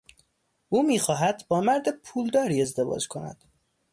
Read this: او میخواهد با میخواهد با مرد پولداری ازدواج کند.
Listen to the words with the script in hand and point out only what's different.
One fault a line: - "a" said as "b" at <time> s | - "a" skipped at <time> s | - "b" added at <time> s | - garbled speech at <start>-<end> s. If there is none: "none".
- "میخواهد با" skipped at 1.6 s